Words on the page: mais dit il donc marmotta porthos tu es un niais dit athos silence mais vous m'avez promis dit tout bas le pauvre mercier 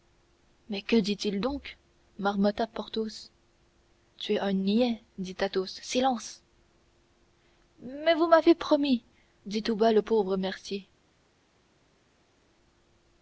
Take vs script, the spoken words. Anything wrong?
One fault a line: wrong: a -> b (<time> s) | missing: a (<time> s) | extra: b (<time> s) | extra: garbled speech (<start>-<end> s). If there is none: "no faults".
extra: que (0.8 s)